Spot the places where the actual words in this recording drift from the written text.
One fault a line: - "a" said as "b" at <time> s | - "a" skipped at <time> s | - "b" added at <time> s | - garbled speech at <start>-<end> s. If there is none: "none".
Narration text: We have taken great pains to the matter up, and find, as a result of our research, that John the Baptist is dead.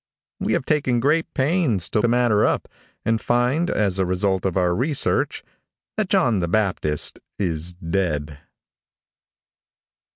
none